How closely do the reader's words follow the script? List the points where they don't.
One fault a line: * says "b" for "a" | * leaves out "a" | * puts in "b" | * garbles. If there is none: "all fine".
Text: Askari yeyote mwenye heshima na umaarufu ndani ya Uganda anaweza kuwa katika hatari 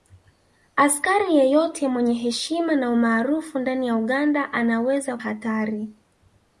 * leaves out "kuwa katika"